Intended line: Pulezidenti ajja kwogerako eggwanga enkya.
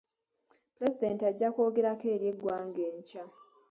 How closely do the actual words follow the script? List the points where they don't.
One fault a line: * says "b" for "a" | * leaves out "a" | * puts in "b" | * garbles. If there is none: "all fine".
* puts in "eri"